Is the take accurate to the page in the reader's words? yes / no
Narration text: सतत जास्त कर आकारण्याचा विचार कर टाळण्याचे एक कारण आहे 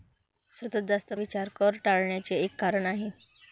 no